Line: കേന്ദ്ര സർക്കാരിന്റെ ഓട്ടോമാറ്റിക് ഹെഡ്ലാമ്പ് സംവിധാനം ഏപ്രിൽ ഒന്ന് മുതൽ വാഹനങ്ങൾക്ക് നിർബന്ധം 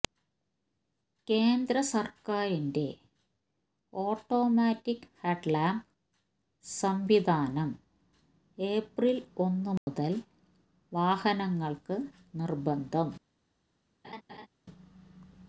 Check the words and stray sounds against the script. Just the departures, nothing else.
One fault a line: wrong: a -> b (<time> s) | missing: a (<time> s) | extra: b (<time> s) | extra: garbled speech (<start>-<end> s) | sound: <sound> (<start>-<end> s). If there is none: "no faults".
sound: dropout (9.8-9.9 s)
sound: laugh (14.0-14.5 s)